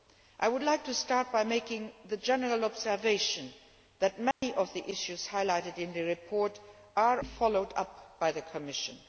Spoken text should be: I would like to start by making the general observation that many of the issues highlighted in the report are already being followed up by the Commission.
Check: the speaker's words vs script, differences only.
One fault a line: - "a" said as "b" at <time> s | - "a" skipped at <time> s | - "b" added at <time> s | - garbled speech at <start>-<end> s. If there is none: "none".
- "already being" skipped at 7.2 s